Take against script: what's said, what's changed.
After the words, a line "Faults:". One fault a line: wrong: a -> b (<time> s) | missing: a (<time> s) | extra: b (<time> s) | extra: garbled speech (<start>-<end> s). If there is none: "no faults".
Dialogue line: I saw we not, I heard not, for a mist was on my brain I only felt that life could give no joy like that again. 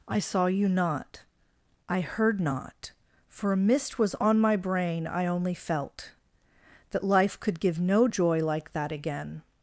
I saw you not, I heard not, for a mist was on my brain I only felt that life could give no joy like that again.
Faults:
wrong: we -> you (0.5 s)